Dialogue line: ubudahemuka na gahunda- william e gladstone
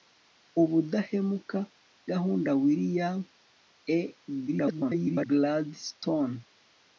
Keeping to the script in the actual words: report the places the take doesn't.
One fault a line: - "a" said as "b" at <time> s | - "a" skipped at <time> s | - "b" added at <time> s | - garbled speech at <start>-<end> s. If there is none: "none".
- "na" skipped at 1.6 s
- garbled speech at 4.5-5.3 s